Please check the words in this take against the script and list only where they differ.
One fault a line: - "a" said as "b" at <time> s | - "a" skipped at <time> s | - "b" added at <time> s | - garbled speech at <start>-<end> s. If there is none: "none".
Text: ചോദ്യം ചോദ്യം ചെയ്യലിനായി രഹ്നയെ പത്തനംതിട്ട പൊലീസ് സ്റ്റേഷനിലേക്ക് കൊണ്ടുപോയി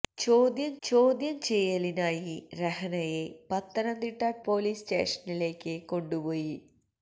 none